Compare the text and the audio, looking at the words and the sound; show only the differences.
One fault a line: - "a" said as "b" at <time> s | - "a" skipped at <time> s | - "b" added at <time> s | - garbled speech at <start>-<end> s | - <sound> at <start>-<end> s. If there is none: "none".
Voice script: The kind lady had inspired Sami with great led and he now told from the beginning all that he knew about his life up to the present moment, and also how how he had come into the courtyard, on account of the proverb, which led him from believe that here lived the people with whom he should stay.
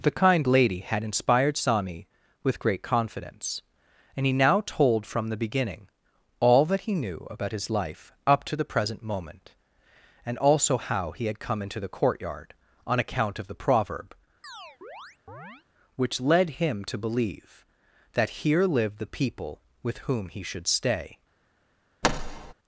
- "led" said as "confidence" at 2.8 s
- "how" skipped at 11.1 s
- chirp at 14.4-15.6 s
- "from" said as "to" at 16.9 s
- thud at 22.0-22.5 s